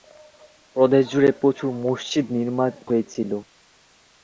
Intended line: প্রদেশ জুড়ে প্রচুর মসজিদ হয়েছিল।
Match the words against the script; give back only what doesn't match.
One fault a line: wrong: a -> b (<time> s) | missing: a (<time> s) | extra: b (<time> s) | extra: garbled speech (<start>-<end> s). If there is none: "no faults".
no faults